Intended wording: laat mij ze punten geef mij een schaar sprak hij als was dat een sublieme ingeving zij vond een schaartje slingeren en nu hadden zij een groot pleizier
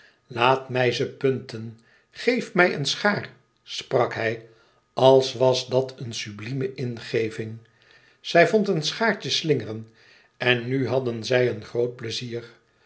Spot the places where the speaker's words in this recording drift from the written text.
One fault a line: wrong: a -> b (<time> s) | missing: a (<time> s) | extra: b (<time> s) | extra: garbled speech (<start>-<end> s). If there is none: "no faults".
no faults